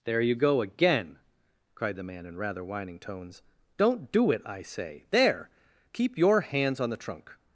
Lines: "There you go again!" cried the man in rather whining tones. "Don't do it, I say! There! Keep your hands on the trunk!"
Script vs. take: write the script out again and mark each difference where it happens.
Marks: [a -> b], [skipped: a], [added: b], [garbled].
"There you go again!" cried the man in rather whining tones. "Don't do it, I say! There! Keep your hands on the trunk!"